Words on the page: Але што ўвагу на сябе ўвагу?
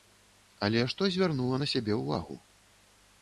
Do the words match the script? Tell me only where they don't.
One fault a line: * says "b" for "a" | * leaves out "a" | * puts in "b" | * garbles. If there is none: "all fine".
* says "звярнула" for "ўвагу"